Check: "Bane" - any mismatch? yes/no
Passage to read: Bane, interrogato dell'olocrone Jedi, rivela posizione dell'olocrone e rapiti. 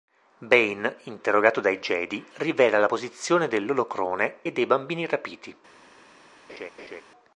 no